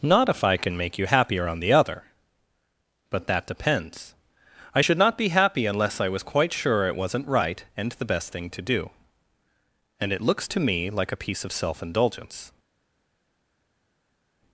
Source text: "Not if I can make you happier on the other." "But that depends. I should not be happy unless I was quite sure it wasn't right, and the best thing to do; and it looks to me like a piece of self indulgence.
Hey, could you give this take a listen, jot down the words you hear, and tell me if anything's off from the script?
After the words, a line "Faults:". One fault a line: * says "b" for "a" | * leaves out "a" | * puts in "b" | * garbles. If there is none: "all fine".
"Not if I can make you happier on the other." "But that depends. I should not be happy unless I was quite sure it wasn't right, and the best thing to do; and it looks to me like a piece of self indulgence.
Faults:
all fine